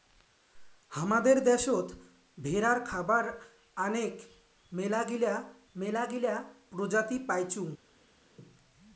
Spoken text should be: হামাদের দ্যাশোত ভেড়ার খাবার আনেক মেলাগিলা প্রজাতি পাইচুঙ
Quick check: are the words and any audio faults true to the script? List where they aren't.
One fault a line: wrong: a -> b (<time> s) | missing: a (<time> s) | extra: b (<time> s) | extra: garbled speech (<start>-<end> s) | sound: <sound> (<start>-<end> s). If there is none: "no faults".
extra: মেলাগিলা (5.7 s)